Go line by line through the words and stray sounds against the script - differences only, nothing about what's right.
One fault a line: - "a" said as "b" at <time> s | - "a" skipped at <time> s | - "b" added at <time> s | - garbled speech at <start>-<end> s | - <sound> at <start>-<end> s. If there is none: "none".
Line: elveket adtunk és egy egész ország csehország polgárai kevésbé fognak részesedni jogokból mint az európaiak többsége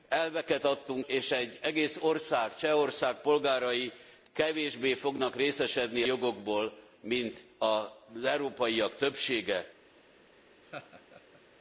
- laugh at 10.6-11.4 s